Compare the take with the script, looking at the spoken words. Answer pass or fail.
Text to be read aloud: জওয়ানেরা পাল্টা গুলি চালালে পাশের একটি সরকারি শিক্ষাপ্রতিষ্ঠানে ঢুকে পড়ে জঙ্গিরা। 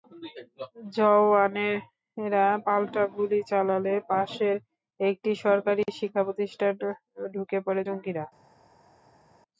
pass